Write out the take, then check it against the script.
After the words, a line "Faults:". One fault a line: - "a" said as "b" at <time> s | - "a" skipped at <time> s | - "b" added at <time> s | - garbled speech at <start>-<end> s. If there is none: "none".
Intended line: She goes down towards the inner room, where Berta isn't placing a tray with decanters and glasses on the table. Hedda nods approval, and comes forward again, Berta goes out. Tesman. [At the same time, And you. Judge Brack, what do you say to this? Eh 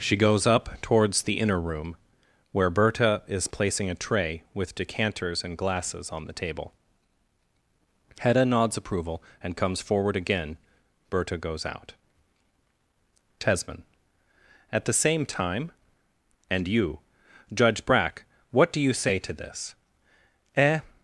She goes up towards the inner room, where Berta is placing a tray with decanters and glasses on the table. Hedda nods approval, and comes forward again, Berta goes out. Tesman. [At the same time, And you. Judge Brack, what do you say to this? Eh
Faults:
- "down" said as "up" at 0.5 s
- "isn't" said as "is" at 3.3 s